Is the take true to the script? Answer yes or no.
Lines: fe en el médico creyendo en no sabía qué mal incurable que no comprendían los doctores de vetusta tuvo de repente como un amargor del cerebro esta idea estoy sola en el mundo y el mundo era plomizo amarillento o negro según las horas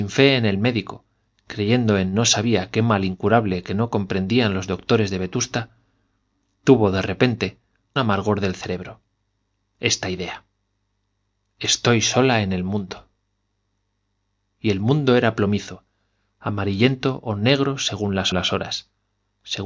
no